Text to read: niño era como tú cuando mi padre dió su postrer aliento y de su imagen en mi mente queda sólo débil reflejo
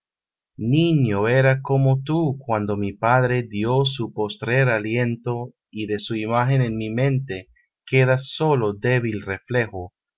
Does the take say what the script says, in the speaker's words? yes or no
yes